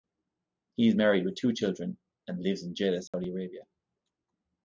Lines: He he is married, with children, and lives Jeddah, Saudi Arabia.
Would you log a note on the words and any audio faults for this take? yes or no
yes